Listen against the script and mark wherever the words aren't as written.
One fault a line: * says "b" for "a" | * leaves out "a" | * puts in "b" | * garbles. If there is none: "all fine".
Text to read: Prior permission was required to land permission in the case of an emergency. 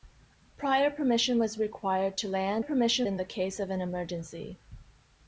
all fine